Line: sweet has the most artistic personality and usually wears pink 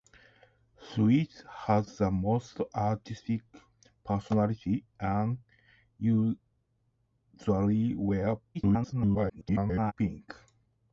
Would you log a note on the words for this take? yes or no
yes